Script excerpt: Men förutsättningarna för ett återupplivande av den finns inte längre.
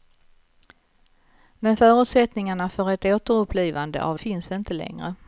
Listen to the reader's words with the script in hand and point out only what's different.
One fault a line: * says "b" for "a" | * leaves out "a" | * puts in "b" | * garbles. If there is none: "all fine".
* leaves out "den"